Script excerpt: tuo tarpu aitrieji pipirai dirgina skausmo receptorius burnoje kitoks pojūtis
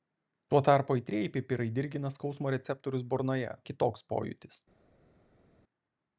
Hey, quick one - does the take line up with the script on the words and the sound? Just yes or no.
yes